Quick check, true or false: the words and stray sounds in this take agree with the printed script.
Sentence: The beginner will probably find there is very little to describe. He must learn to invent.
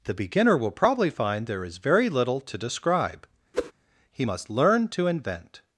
false